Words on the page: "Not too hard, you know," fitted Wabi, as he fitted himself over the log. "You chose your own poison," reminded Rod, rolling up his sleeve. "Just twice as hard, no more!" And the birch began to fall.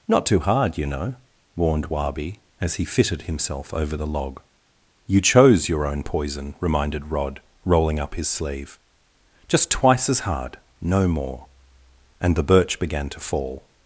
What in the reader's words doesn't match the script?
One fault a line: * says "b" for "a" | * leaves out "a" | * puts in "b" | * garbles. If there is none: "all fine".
* says "warned" for "fitted"